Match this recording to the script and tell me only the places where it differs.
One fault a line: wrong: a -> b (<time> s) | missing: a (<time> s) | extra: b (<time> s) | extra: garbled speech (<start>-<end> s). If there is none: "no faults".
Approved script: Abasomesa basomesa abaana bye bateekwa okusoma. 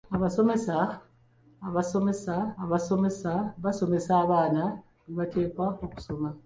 extra: abasomesa (2.6 s)